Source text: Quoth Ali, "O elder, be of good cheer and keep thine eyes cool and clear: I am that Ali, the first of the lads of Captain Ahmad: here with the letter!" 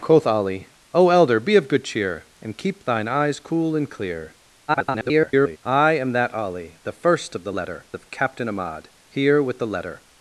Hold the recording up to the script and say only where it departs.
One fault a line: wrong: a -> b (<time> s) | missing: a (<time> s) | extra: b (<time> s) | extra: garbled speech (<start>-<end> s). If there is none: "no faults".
extra: garbled speech (4.7-5.6 s)
wrong: lads -> letter (7.5 s)